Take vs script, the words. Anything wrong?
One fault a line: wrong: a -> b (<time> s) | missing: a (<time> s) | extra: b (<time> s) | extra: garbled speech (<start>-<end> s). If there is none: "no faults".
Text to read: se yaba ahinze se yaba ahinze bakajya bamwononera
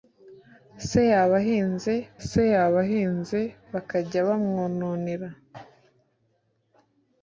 no faults